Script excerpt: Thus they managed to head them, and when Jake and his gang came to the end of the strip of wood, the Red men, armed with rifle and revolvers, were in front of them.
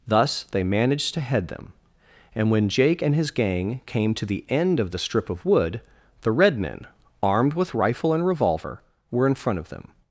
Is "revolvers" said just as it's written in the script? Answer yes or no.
no